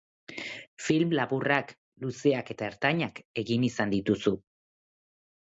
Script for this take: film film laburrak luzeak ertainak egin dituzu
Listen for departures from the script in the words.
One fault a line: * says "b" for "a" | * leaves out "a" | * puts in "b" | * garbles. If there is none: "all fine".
* leaves out "film"
* puts in "eta"
* puts in "izan"